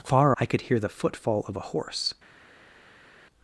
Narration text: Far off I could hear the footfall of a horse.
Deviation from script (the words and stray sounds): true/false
true